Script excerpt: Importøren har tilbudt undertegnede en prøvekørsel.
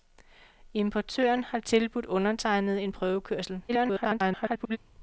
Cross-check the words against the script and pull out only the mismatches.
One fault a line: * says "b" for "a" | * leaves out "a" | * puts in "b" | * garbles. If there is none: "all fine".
* garbles